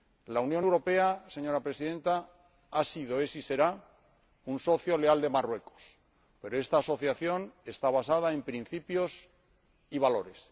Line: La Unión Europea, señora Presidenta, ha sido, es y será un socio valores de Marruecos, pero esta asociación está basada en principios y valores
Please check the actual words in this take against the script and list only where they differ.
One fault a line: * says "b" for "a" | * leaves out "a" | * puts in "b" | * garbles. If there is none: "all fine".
* says "leal" for "valores"